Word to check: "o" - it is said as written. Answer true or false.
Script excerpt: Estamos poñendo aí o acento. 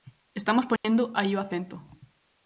true